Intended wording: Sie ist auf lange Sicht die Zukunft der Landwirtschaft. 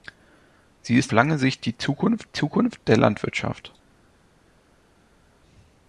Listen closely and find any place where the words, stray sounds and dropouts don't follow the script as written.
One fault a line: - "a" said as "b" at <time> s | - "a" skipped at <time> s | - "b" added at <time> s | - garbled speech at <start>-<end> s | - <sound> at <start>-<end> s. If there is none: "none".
- "auf" skipped at 1.1 s
- "Zukunft" added at 2.3 s